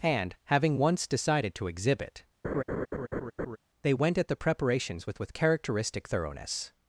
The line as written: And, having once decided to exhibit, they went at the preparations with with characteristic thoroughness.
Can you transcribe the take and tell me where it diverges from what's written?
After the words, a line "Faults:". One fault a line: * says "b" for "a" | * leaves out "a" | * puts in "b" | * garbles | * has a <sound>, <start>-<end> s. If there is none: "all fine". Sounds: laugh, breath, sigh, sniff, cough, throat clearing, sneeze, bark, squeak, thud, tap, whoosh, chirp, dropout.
And, having once decided to exhibit, they went at the preparations with with characteristic thoroughness.
Faults:
* has a laugh, 2.4-3.6 s